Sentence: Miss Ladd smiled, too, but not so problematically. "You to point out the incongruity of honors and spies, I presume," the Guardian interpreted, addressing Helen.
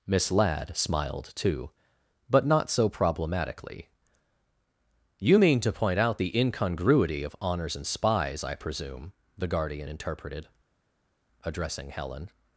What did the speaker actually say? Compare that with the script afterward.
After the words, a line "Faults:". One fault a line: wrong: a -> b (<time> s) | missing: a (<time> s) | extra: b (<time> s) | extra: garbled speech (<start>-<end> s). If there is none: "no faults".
Miss Ladd smiled, too, but not so problematically. "You mean to point out the incongruity of honors and spies, I presume," the Guardian interpreted, addressing Helen.
Faults:
extra: mean (5.4 s)